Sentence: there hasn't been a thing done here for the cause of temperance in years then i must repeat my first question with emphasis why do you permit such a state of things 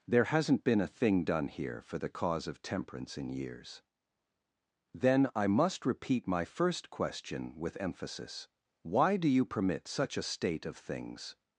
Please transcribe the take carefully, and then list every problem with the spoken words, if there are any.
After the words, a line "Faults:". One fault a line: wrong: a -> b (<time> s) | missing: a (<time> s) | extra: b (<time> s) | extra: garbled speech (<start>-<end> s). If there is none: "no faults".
there hasn't been a thing done here for the cause of temperance in years then i must repeat my first question with emphasis why do you permit such a state of things
Faults:
no faults